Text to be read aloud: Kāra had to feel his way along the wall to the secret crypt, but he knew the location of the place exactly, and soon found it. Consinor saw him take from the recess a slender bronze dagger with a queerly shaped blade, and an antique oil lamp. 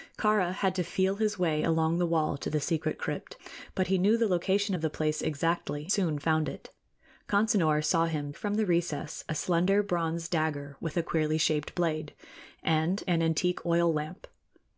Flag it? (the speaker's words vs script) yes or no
yes